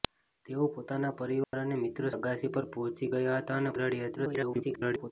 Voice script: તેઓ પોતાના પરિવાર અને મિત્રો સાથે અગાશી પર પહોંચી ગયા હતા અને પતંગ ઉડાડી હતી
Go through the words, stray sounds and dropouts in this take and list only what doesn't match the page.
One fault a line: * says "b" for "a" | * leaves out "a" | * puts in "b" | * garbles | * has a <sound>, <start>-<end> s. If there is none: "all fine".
* has a dropout, 1.4-1.5 s
* leaves out "સાથે"
* leaves out "પતંગ"
* garbles